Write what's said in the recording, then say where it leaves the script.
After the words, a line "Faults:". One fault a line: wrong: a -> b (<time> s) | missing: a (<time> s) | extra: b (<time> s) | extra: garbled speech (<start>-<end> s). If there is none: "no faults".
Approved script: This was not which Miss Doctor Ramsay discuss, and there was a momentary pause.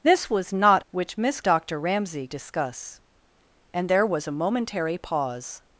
This was not which Miss Doctor Ramsay discuss, and there was a momentary pause.
Faults:
no faults